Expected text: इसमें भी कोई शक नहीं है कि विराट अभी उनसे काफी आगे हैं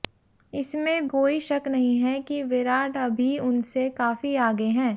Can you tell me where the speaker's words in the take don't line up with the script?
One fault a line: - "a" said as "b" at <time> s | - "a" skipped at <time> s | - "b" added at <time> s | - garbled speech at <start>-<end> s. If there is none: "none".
- "भी" skipped at 1.1 s